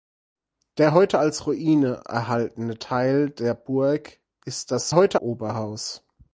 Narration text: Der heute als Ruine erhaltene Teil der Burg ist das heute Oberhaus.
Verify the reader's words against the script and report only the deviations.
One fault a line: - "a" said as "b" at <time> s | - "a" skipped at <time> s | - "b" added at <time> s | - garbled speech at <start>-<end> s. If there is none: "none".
none